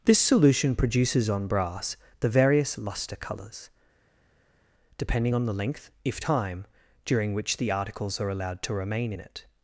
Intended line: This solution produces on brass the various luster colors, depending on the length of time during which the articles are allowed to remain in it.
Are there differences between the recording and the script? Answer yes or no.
yes